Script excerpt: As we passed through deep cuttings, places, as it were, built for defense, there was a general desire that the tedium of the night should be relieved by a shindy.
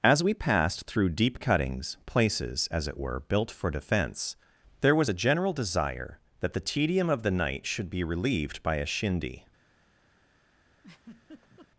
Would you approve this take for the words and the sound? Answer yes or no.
no